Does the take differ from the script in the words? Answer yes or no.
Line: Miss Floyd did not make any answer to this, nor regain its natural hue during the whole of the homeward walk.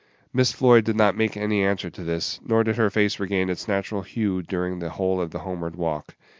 yes